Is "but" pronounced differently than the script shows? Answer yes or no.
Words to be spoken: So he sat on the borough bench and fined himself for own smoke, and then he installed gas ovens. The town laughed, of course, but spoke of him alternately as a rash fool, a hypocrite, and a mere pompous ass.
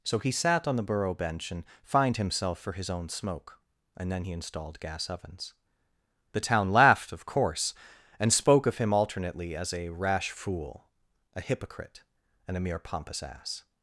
yes